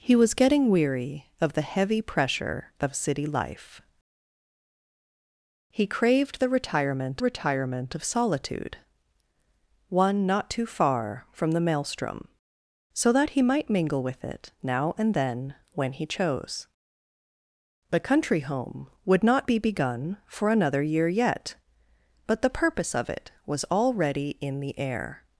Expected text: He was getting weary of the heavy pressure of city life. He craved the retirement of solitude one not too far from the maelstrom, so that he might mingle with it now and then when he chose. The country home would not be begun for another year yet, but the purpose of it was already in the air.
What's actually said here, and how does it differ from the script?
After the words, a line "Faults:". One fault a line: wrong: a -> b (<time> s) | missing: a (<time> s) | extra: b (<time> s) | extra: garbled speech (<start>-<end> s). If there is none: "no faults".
He was getting weary of the heavy pressure of city life. He craved the retirement retirement of solitude one not too far from the maelstrom, so that he might mingle with it now and then when he chose. The country home would not be begun for another year yet, but the purpose of it was already in the air.
Faults:
extra: retirement (7.2 s)